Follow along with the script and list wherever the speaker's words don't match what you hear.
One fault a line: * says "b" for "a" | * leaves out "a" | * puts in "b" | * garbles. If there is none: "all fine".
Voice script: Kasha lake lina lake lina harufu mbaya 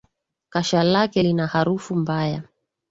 * leaves out "lake lina"